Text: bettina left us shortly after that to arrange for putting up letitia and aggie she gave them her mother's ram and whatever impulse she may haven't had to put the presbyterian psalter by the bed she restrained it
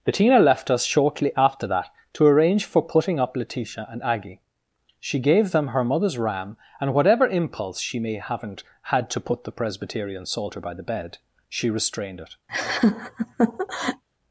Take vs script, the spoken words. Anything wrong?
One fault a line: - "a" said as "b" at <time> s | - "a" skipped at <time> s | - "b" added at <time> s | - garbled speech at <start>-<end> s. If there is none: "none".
none